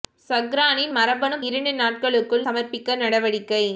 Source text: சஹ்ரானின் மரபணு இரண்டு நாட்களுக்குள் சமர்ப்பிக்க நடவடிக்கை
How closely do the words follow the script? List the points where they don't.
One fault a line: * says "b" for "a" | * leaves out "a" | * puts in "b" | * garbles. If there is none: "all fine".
all fine